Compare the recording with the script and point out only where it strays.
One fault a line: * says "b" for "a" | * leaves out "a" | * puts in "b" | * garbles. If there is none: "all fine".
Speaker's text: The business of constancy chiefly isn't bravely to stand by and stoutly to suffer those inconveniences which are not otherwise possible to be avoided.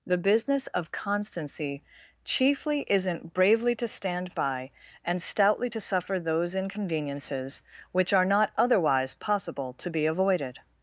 all fine